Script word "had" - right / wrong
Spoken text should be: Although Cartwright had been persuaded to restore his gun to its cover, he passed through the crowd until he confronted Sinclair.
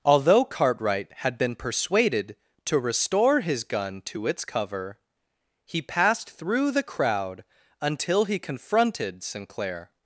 right